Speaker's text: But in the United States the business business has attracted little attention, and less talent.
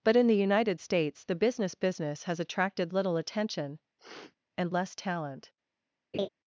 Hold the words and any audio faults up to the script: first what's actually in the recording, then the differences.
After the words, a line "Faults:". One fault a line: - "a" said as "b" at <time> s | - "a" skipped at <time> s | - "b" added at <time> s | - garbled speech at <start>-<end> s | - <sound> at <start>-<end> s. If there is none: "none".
But in the United States the business business has attracted little attention, and less talent.
Faults:
- sniff at 4.0-4.4 s
- laugh at 6.1-6.3 s